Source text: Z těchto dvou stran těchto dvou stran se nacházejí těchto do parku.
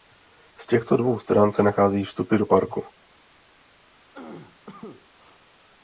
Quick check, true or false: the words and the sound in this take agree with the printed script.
false